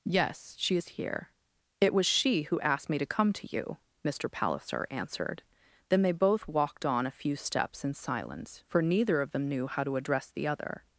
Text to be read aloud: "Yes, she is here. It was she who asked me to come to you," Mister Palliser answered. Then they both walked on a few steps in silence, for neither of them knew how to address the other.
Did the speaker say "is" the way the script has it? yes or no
yes